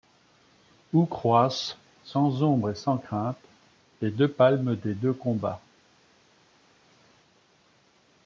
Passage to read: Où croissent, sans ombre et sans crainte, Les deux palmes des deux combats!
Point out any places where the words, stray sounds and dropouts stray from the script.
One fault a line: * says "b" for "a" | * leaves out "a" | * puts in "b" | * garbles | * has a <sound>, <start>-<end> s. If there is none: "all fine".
all fine